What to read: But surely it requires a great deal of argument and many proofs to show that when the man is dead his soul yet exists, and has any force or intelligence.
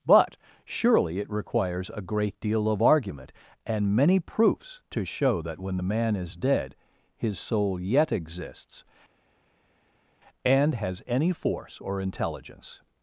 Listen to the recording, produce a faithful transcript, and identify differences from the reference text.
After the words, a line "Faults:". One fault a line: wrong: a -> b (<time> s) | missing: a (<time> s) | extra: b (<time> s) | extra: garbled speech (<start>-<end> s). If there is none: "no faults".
But surely it requires a great deal of argument and many proofs to show that when the man is dead his soul yet exists, and has any force or intelligence.
Faults:
no faults